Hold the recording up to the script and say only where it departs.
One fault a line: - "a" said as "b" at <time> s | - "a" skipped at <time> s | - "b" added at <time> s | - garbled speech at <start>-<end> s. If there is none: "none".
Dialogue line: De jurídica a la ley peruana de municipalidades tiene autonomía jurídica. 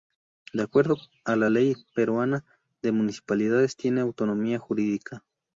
- "jurídica" said as "acuerdo" at 0.6 s